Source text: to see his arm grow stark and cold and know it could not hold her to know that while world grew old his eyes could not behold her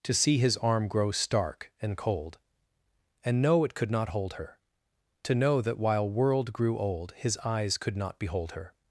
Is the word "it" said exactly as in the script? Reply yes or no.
yes